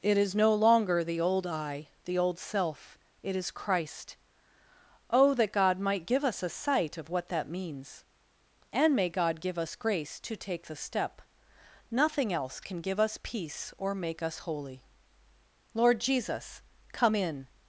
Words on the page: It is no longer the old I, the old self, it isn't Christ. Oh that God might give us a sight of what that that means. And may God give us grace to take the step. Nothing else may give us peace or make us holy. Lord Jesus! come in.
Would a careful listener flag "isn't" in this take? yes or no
yes